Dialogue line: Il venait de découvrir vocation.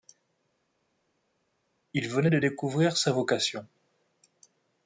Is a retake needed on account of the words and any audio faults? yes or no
yes